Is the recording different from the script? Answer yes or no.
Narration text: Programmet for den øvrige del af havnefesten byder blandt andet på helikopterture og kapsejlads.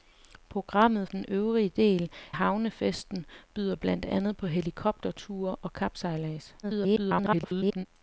yes